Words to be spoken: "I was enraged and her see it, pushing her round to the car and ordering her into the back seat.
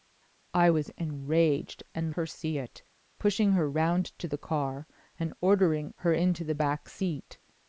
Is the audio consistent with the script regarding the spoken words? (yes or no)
yes